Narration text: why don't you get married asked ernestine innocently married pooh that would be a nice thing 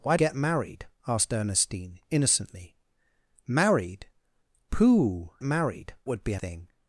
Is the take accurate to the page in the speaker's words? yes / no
no